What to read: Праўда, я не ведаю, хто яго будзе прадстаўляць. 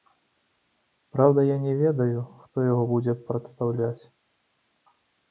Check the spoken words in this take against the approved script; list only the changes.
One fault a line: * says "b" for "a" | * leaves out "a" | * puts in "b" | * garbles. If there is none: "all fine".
all fine